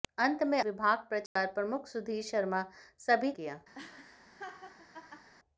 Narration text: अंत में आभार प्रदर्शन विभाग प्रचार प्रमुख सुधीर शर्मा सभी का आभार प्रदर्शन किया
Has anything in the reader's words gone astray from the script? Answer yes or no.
yes